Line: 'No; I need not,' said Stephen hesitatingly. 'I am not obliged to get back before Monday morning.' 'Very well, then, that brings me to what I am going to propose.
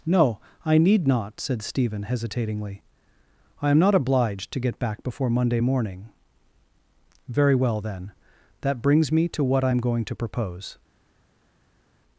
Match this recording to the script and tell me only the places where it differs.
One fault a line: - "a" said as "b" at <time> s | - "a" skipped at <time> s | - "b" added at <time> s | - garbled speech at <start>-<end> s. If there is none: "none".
none